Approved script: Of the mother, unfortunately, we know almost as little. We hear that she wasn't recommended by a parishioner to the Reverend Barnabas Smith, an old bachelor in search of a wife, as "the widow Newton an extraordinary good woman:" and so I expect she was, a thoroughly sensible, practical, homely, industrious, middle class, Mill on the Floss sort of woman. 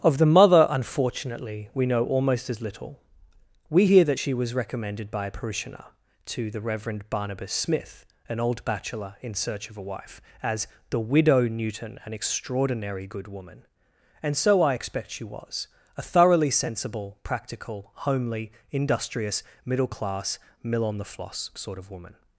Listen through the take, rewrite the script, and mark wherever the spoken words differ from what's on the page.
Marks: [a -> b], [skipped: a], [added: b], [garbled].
Of the mother, unfortunately, we know almost as little. We hear that she [wasn't -> was] recommended by a parishioner to the Reverend Barnabas Smith, an old bachelor in search of a wife, as "the widow Newton an extraordinary good woman:" and so I expect she was, a thoroughly sensible, practical, homely, industrious, middle class, Mill on the Floss sort of woman.